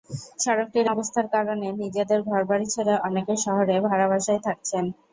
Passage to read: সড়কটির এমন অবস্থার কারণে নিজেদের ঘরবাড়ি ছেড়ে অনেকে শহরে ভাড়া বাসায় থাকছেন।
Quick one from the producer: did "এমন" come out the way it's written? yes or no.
no